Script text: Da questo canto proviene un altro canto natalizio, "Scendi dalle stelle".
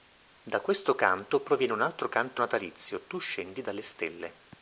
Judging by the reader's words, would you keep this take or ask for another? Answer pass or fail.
fail